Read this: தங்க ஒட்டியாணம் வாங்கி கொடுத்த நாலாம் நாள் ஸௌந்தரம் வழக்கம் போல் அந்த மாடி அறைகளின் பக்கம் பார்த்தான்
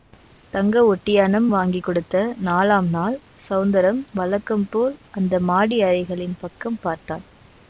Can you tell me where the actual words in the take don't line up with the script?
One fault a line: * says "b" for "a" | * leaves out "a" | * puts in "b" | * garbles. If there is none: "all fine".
all fine